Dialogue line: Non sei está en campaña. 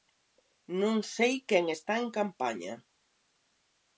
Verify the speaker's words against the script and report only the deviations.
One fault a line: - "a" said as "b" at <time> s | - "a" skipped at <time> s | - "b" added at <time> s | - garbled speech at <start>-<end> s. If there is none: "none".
- "quen" added at 1.5 s